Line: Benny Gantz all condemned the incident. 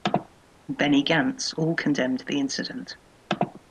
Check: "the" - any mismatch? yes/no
no